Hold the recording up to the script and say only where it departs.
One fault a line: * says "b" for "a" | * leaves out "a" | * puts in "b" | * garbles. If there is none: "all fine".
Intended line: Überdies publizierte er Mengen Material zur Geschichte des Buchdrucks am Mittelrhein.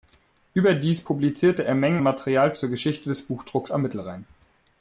all fine